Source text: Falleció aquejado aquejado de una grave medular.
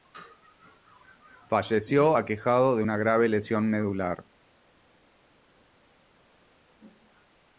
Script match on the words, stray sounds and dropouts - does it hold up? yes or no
no